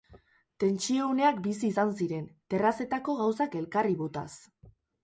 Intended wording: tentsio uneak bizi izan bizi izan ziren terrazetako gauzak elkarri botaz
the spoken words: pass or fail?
fail